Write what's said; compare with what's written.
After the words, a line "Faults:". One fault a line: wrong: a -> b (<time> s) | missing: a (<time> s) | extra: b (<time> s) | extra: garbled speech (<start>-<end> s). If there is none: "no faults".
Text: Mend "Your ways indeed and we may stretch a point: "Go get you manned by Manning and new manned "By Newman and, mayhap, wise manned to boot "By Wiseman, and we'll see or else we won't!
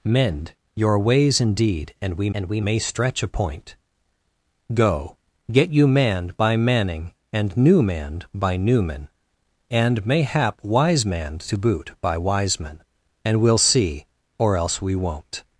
Mend "Your ways indeed and we and we may stretch a point: "Go get you manned by Manning and new manned "By Newman and, mayhap, wise manned to boot "By Wiseman, and we'll see or else we won't!
Faults:
extra: and we (2.3 s)